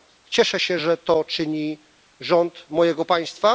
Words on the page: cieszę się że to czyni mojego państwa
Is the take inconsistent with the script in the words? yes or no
yes